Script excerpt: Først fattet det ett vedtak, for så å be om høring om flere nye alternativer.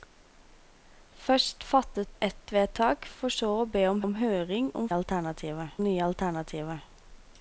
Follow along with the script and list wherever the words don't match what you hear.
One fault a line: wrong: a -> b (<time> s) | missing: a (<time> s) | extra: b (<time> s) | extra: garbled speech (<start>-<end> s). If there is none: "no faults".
missing: det (2.1 s)
extra: om (4.0 s)
wrong: flere -> alternativer (4.9 s)